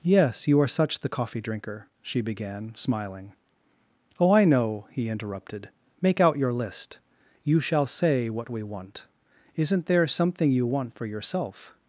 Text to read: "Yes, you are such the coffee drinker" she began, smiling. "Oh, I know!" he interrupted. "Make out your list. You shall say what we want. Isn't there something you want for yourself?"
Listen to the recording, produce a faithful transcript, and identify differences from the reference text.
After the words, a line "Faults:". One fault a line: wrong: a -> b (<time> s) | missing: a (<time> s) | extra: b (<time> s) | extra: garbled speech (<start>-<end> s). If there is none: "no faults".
"Yes, you are such the coffee drinker" she began, smiling. "Oh, I know!" he interrupted. "Make out your list. You shall say what we want. Isn't there something you want for yourself?"
Faults:
no faults